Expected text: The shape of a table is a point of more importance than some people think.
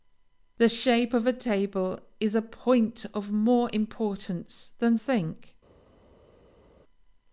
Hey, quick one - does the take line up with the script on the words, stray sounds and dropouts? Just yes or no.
no